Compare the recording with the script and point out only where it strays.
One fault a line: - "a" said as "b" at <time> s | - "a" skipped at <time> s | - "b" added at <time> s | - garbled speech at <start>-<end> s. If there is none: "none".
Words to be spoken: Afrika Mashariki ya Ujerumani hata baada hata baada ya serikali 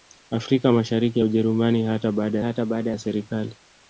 none